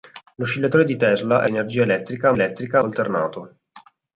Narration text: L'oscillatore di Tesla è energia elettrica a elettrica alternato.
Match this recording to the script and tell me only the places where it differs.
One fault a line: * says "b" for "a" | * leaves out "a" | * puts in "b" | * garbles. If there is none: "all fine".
all fine